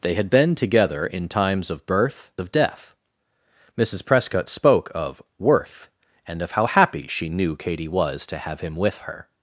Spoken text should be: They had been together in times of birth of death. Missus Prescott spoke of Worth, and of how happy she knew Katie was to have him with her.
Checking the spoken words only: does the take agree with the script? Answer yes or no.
yes